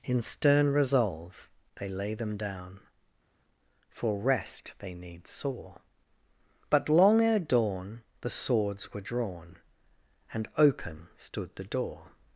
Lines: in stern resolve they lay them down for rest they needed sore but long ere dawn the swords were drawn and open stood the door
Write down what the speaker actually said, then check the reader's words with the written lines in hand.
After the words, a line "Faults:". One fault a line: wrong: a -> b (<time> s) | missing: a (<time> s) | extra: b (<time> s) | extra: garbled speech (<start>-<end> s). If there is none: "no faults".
in stern resolve they lay them down for rest they need sore but long ere dawn the swords were drawn and open stood the door
Faults:
wrong: needed -> need (4.9 s)